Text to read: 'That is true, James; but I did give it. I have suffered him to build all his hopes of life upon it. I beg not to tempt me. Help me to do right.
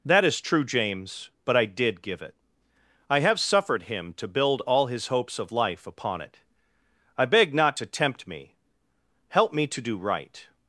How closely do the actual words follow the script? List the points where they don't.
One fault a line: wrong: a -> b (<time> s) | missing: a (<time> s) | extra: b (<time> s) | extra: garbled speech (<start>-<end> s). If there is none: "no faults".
no faults